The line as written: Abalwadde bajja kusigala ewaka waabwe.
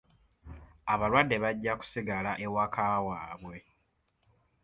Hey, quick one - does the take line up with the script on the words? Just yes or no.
yes